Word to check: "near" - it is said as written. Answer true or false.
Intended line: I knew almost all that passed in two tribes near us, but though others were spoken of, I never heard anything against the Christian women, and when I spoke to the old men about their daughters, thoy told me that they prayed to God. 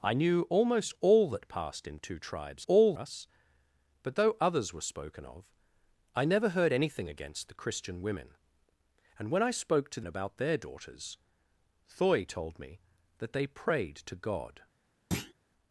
false